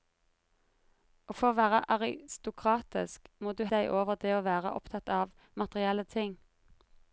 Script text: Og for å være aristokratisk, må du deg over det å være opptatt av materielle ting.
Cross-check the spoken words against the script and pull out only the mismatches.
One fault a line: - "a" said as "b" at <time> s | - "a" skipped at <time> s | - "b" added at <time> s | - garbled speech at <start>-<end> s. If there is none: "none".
none